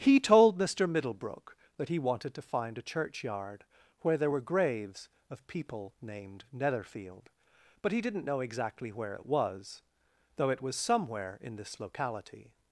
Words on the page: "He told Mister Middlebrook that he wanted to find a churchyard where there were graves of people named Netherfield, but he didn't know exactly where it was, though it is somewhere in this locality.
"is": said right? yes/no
no